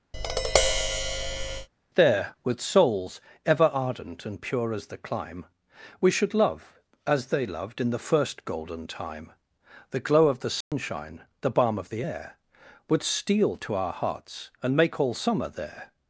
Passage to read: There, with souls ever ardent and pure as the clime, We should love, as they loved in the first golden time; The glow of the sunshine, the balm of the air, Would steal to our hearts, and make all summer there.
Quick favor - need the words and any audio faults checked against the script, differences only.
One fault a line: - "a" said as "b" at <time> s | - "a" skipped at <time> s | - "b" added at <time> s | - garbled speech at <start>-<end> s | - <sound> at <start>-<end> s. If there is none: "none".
- tap at 0.1-1.7 s
- dropout at 10.6-10.7 s